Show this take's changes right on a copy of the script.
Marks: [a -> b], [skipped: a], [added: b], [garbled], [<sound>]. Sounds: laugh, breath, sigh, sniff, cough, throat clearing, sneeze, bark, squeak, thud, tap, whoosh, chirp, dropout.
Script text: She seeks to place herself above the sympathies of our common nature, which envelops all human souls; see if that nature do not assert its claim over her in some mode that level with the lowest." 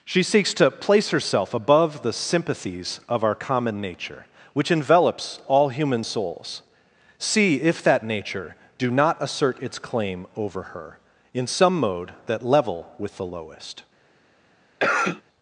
She seeks to place herself above the sympathies of our common nature, which envelops all human souls; see if that nature do not assert its claim over her in some mode that level with the lowest." [cough]